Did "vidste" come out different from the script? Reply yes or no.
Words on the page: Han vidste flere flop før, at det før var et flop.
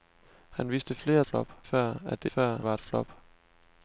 no